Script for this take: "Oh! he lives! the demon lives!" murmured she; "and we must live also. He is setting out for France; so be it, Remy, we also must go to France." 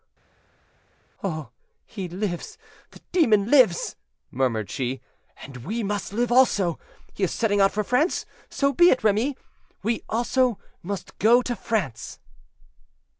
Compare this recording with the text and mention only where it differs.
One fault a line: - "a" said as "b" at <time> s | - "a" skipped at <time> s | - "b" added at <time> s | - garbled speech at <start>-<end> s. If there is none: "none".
none